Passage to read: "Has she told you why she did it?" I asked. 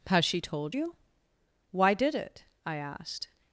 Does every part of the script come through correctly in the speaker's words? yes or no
no